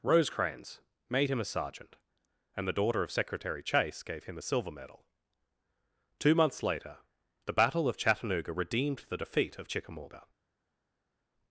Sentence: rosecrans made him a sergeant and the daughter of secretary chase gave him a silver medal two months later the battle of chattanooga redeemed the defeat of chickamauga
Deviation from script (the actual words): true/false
false